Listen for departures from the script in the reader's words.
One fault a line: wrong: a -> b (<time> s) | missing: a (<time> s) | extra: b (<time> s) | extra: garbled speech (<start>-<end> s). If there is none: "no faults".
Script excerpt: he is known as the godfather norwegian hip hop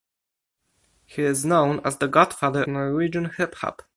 no faults